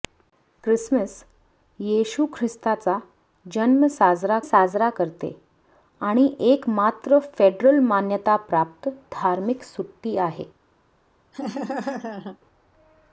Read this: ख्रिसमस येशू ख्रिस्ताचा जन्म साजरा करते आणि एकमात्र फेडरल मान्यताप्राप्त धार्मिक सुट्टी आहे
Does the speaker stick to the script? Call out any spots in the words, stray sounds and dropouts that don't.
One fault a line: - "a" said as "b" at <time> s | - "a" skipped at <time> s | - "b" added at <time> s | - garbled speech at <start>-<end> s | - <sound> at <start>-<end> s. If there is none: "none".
- "साजरा" added at 4.4 s
- laugh at 11.3-12.4 s